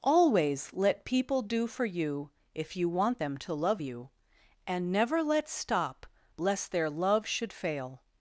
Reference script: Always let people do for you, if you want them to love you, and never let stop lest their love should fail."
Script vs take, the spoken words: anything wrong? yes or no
no